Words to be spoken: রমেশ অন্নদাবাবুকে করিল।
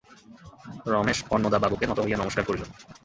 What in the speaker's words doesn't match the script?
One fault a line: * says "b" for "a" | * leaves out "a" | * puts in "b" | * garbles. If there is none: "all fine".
* puts in "নত হইয়া নমস্কার"